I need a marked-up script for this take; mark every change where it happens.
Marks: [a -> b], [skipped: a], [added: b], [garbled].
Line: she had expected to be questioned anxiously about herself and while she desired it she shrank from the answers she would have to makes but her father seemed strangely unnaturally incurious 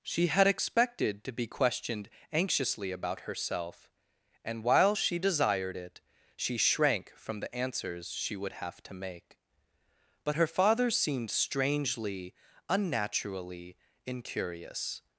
she had expected to be questioned anxiously about herself and while she desired it she shrank from the answers she would have to [makes -> make] but her father seemed strangely unnaturally incurious